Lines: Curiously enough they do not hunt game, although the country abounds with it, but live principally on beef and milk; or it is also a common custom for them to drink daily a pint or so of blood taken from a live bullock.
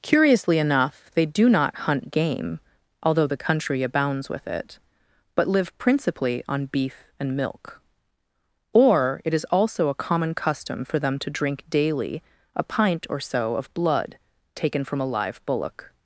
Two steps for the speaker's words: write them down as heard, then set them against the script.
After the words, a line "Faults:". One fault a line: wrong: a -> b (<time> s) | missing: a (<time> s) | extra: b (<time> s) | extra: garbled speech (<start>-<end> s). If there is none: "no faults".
Curiously enough they do not hunt game, although the country abounds with it, but live principally on beef and milk; or it is also a common custom for them to drink daily a pint or so of blood taken from a live bullock.
Faults:
no faults